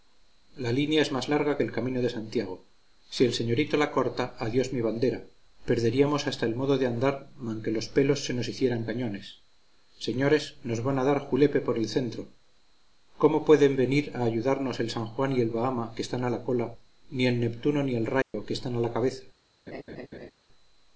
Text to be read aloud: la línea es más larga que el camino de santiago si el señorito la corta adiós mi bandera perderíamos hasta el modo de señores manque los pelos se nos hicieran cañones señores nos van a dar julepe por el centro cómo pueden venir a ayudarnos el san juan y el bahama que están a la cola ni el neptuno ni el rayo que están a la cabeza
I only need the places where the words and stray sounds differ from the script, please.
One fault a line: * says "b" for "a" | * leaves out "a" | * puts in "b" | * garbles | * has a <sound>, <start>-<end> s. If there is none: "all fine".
* says "andar" for "señores"
* has a dropout, 18.2-18.3 s
* has a laugh, 19.7-20.3 s